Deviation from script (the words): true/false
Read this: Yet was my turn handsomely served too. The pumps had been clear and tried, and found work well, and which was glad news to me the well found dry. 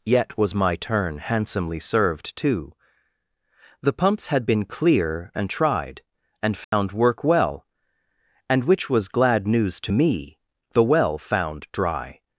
false